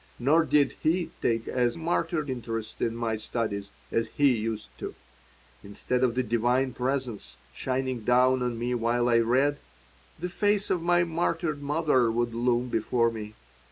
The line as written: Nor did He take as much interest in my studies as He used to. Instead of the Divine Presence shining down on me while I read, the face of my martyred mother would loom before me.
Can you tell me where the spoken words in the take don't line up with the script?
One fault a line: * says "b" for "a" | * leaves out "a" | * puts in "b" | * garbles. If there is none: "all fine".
* says "martyred" for "much"